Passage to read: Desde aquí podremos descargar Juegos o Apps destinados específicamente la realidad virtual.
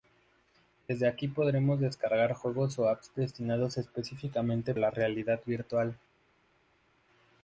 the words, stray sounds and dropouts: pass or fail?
pass